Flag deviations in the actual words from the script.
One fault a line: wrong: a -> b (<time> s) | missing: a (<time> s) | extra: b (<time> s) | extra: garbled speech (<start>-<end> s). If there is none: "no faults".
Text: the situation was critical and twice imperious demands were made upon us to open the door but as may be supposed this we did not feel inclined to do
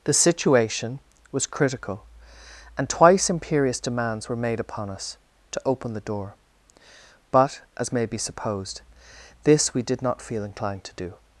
no faults